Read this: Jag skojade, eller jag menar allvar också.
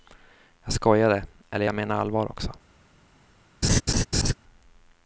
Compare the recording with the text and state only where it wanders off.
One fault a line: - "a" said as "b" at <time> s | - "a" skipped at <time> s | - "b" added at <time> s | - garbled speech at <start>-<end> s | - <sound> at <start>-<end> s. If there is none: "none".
- laugh at 3.6-4.3 s